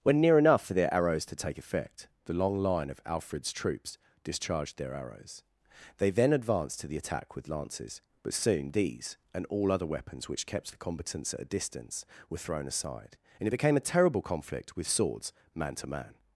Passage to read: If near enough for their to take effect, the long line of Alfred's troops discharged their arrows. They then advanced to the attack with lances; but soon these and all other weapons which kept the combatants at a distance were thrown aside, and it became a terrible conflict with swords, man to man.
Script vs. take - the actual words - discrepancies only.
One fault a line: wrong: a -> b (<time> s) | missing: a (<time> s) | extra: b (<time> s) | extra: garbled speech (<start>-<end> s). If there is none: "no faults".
wrong: If -> When (0.0 s)
extra: arrows (0.9 s)